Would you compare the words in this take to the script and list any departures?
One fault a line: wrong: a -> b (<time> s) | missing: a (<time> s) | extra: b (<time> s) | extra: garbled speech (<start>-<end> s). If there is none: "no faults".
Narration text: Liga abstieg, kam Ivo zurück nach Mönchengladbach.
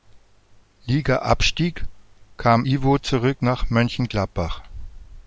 no faults